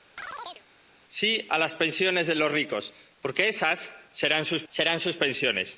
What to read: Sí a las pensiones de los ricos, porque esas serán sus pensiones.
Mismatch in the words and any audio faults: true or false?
true